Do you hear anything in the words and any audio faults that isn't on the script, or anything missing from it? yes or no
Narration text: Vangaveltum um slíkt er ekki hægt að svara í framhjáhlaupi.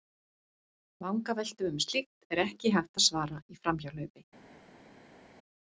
no